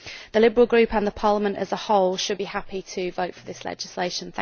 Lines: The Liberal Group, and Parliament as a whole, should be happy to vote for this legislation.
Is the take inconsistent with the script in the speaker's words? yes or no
no